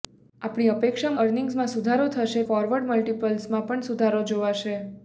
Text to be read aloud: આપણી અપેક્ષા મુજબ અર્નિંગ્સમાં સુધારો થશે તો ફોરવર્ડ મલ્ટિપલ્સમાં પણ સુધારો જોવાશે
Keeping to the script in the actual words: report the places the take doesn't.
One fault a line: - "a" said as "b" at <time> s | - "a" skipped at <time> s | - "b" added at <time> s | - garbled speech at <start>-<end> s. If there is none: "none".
- "મુજબ" skipped at 1.1 s
- "તો" skipped at 2.5 s